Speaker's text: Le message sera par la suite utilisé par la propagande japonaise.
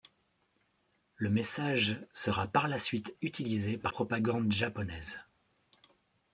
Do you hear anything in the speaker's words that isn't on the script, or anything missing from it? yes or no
yes